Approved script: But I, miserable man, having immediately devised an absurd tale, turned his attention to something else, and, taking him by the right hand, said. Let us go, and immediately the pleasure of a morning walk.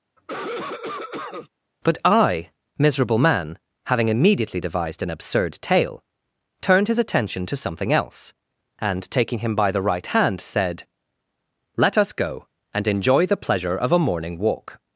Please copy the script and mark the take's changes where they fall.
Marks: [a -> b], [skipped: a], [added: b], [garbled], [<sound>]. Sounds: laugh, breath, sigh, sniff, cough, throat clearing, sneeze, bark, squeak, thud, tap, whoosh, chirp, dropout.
[cough] But I, miserable man, having immediately devised an absurd tale, turned his attention to something else, and, taking him by the right hand, said. Let us go, and [immediately -> enjoy] the pleasure of a morning walk.